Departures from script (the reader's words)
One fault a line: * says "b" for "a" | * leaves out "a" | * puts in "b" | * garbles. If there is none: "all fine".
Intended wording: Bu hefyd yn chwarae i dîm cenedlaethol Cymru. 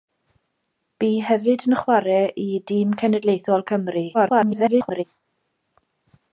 * garbles